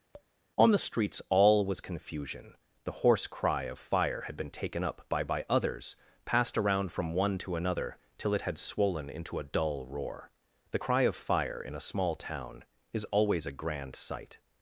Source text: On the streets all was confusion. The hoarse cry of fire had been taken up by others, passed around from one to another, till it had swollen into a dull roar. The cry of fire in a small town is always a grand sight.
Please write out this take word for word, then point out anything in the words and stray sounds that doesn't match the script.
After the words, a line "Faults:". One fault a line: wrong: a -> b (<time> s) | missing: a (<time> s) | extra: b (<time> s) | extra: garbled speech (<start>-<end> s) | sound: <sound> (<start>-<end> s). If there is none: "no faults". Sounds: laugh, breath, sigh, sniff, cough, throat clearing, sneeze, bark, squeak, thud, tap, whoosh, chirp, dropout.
On the streets all was confusion. The hoarse cry of fire had been taken up by by others, passed around from one to another, till it had swollen into a dull roar. The cry of fire in a small town is always a grand sight.
Faults:
sound: tap (0.1-0.3 s)
extra: by (5.2 s)